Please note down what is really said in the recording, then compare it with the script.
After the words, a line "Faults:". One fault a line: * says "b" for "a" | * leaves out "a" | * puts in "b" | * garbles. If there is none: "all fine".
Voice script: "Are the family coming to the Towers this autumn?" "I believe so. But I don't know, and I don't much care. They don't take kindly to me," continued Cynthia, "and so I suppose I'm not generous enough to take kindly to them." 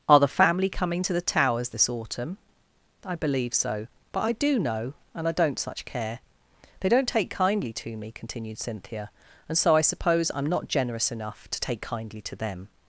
"Are the family coming to the Towers this autumn?" "I believe so. But I do know, and I don't such care. They don't take kindly to me," continued Cynthia, "and so I suppose I'm not generous enough to take kindly to them."
Faults:
* says "do" for "don't"
* says "such" for "much"